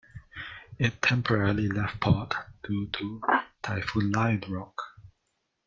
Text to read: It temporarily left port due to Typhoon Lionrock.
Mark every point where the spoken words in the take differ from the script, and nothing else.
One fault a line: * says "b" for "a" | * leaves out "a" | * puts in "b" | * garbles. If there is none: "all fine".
all fine